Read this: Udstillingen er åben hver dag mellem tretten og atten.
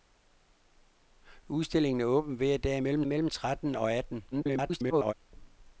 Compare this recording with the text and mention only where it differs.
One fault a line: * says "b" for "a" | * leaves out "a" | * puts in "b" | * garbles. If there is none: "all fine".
* puts in "mellem"
* garbles